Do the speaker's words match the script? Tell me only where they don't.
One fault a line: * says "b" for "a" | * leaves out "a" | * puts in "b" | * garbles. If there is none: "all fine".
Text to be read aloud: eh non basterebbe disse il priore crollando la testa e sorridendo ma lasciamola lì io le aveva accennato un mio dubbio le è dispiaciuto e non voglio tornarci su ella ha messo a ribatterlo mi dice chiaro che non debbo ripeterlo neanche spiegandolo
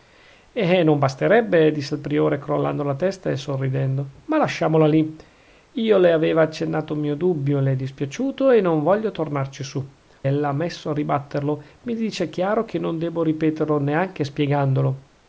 all fine